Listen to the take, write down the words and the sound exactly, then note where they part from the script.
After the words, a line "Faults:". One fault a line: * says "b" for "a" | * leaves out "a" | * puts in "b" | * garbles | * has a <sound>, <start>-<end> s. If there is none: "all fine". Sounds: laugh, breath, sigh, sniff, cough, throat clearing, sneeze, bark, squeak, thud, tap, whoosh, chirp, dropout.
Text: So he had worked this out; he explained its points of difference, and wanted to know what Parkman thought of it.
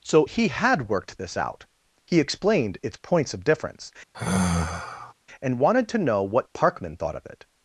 So he had worked this out; he explained its points of difference, and wanted to know what Parkman thought of it.
Faults:
* has a sigh, 4.1-5.1 s